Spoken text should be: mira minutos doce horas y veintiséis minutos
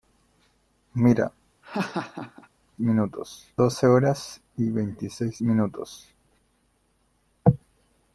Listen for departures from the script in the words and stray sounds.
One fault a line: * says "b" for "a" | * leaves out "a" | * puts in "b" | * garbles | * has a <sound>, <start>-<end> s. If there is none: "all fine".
* has a laugh, 1.6-2.5 s